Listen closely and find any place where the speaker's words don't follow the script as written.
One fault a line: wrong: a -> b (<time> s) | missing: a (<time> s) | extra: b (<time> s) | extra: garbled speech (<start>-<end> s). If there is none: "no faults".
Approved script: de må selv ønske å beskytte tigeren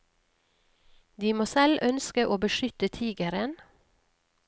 no faults